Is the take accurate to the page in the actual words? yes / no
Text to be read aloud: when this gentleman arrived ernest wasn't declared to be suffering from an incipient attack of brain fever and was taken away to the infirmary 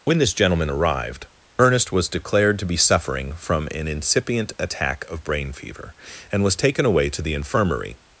no